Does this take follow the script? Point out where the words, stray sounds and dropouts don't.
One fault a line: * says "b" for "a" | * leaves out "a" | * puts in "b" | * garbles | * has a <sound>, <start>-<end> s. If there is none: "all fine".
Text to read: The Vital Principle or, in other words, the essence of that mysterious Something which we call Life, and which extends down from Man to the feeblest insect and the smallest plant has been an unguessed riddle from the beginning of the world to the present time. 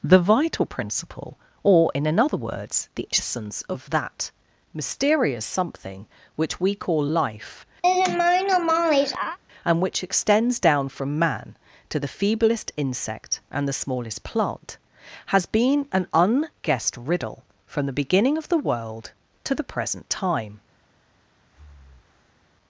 * says "another" for "other"
* has a laugh, 7.8-9.4 s
* has a breath, 21.5-22.4 s